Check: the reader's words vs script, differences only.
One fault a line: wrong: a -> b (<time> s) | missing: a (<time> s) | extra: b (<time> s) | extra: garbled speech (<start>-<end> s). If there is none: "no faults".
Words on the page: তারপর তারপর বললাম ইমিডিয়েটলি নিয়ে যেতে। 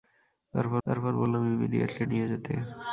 no faults